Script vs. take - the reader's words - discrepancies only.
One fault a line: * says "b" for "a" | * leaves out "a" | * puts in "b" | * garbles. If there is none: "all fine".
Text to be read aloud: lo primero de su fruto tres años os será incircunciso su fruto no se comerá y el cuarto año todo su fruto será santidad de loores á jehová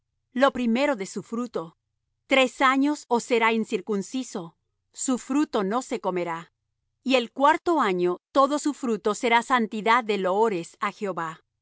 all fine